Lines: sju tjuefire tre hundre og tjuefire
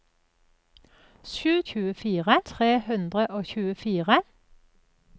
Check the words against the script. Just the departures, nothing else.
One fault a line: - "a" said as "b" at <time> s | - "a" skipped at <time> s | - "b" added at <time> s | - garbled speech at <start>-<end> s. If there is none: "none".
none